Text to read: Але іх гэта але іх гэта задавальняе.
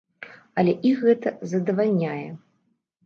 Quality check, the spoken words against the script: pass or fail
fail